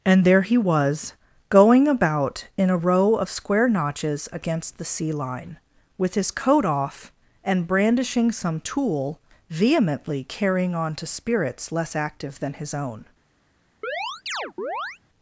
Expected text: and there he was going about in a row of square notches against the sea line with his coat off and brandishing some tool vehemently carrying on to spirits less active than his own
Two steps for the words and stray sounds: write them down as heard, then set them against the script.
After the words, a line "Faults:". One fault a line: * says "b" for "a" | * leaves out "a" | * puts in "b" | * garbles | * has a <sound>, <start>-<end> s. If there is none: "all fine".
and there he was going about in a row of square notches against the sea line with his coat off and brandishing some tool vehemently carrying on to spirits less active than his own
Faults:
* has a chirp, 13.8-15.0 s